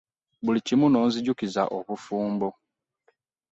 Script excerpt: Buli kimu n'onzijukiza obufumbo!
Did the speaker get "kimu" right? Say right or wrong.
right